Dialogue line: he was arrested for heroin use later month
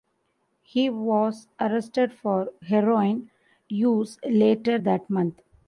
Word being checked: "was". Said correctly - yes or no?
yes